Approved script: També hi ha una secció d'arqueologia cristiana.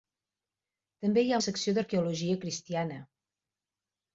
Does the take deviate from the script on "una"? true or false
true